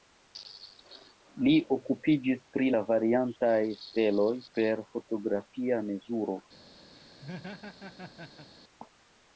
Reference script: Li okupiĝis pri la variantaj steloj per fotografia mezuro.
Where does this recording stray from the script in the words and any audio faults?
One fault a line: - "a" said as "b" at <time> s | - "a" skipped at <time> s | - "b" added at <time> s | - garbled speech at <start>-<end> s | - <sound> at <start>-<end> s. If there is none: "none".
- laugh at 6.9-8.5 s